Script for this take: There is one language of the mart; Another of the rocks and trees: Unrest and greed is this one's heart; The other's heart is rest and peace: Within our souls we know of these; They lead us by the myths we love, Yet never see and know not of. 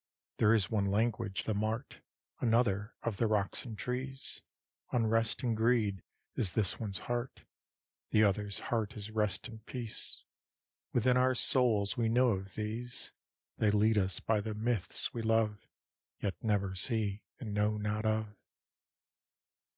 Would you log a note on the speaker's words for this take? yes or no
yes